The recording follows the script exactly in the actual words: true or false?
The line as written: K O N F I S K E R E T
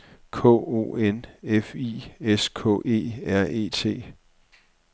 true